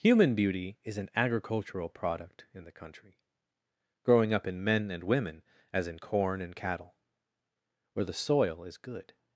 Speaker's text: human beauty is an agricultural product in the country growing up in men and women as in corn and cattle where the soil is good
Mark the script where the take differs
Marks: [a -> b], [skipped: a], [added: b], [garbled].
human beauty is an agricultural product in the country growing up in men and women as in corn and cattle where the soil is good